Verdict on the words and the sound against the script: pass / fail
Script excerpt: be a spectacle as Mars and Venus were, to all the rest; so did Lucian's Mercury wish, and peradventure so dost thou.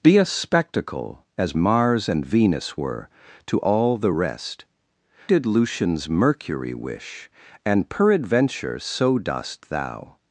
fail